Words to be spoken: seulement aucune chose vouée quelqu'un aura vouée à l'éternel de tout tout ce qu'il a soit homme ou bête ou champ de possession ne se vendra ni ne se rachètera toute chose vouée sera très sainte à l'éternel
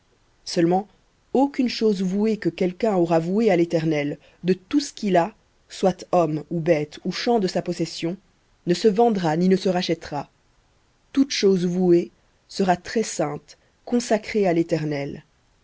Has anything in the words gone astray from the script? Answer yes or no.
yes